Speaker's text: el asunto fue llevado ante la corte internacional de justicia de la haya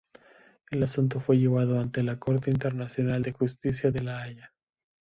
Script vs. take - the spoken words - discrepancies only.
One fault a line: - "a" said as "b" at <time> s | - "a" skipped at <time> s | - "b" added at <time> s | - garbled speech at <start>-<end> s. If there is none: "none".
none